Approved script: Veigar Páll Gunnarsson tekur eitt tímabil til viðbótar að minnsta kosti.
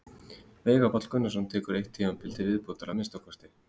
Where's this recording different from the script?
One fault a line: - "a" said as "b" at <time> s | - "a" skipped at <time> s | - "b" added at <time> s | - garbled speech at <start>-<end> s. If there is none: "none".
none